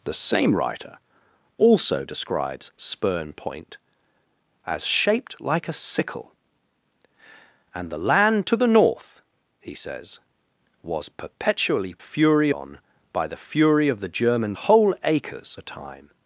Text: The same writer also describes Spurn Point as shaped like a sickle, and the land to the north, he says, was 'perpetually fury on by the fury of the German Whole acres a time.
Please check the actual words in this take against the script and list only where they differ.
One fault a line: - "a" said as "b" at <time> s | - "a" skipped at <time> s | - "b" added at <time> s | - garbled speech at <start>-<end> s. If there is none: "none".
none